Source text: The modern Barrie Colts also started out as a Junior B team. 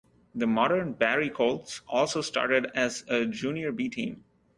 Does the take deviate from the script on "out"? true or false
true